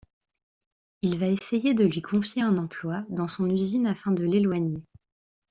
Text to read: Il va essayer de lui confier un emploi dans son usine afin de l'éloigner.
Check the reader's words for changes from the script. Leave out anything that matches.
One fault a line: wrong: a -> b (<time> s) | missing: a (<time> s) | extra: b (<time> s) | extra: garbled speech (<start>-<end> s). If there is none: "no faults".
no faults